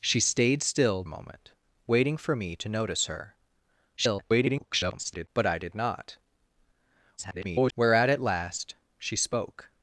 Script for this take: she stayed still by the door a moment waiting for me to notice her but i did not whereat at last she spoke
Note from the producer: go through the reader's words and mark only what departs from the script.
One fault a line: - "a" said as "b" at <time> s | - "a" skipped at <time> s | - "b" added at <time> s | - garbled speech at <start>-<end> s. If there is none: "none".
- "by the door" skipped at 1.0 s
- garbled speech at 4.0-5.3 s
- garbled speech at 7.2-7.7 s